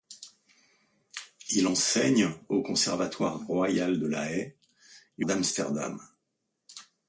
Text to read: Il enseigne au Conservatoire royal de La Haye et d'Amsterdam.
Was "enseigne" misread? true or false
false